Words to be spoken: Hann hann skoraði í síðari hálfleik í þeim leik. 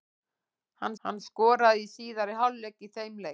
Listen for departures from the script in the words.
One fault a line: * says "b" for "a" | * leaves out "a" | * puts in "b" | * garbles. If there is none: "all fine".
all fine